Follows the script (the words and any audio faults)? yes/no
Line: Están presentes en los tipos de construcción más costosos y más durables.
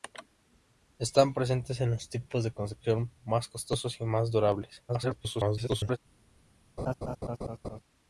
no